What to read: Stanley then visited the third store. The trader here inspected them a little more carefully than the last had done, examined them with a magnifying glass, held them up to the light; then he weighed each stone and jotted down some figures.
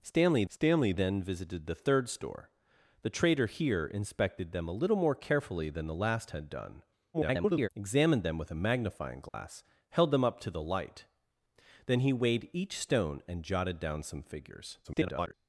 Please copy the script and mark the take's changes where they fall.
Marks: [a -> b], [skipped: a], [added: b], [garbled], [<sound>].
Stanley [added: stanley] then visited the third store. The trader here inspected them a little more carefully than the last had done, [garbled] examined them with a magnifying glass, [dropout] held them up to the light; then he weighed each stone and jotted down some figures. [garbled]